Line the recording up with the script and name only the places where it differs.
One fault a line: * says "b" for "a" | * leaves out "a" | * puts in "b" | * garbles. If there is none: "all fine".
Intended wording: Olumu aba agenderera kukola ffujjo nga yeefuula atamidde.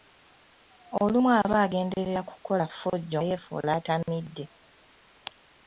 * leaves out "nga"